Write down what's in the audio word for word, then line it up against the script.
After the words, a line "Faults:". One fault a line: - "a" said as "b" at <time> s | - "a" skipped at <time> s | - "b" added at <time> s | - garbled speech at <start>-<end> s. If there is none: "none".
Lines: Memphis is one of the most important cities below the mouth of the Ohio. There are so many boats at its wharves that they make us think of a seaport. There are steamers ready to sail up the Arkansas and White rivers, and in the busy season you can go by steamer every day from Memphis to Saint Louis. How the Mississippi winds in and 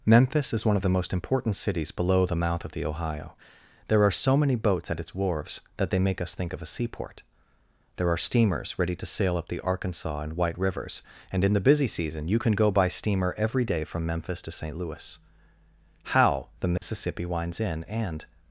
Memphis is one of the most important cities below the mouth of the Ohio. There are so many boats at its wharves that they make us think of a seaport. There are steamers ready to sail up the Arkansas and White rivers, and in the busy season you can go by steamer every day from Memphis to Saint Louis. How the Mississippi winds in and
Faults:
none